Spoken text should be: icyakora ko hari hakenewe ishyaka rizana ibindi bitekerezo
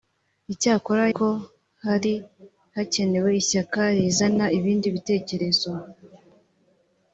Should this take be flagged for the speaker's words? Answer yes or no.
no